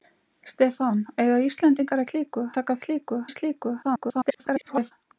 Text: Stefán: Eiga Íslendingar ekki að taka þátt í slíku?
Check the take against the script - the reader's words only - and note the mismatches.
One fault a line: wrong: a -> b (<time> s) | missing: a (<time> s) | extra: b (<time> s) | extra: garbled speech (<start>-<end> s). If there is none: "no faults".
wrong: ekki -> slíku (2.1 s)
wrong: þátt -> slíku (2.9 s)
extra: garbled speech (3.8-4.9 s)